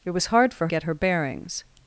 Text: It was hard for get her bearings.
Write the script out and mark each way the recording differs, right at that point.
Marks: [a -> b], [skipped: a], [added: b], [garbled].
It was hard for get her bearings.